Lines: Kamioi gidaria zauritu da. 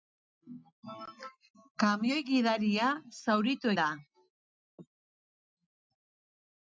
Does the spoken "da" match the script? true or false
true